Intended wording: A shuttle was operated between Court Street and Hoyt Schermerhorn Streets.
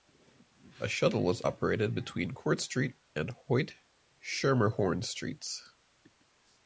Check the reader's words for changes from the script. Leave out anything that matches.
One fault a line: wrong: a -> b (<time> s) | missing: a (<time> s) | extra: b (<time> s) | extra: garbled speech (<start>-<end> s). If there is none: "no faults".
no faults